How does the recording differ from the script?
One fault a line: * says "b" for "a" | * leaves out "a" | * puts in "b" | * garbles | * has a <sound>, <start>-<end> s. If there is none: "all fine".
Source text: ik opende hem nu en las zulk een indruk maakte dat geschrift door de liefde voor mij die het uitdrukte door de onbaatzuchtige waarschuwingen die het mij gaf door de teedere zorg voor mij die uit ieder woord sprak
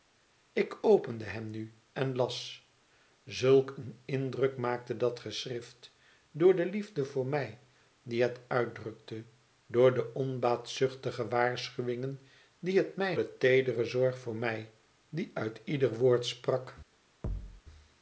* leaves out "gaf door"
* has a thud, 17.2-17.6 s